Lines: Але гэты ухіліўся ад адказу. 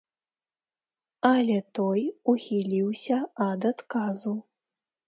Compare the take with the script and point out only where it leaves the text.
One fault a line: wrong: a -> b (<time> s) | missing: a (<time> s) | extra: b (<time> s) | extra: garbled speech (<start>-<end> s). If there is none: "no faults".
wrong: гэты -> той (1.8 s)